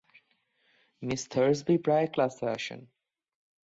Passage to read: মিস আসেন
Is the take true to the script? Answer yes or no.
no